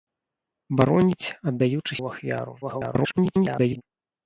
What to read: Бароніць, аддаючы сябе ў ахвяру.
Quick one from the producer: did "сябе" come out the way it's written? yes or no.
no